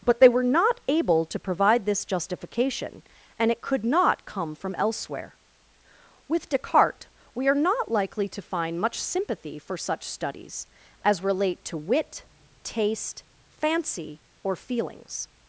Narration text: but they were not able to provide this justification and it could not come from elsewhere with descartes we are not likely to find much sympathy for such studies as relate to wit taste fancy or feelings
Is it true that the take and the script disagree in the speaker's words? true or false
false